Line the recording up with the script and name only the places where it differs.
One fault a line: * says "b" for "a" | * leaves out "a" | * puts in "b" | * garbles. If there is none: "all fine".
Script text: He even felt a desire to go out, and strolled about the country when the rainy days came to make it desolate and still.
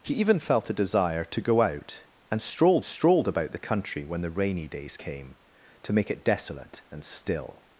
* puts in "strolled"